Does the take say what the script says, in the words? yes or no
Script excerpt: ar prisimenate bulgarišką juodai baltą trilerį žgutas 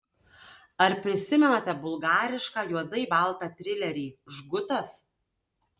yes